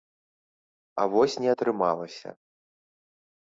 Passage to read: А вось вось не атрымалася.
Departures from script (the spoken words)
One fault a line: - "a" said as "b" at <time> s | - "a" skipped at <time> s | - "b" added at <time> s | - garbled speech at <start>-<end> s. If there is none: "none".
- "вось" skipped at 1.4 s